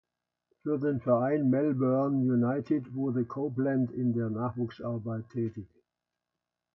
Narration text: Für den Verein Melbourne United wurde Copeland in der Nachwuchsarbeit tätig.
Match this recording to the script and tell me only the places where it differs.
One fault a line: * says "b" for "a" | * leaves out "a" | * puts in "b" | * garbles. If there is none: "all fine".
all fine